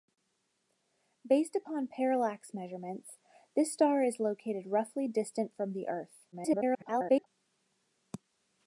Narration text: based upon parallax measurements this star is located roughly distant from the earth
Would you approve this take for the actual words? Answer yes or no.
no